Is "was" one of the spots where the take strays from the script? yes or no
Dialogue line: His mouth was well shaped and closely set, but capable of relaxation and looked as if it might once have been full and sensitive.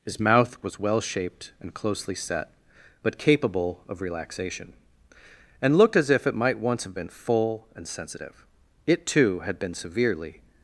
no